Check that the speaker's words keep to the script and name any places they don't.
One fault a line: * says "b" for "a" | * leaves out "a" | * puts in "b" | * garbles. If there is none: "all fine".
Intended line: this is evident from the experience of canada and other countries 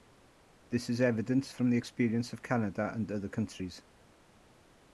all fine